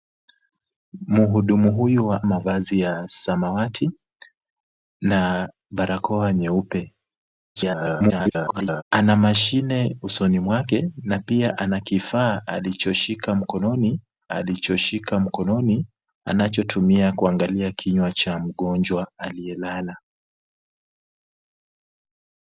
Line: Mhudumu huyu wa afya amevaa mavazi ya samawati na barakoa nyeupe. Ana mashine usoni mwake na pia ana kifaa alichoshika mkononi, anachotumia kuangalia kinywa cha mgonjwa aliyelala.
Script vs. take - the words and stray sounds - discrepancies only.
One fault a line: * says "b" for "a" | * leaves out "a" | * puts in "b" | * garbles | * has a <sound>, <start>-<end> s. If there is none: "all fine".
* leaves out "afya amevaa"
* garbles
* puts in "alichoshika mkononi"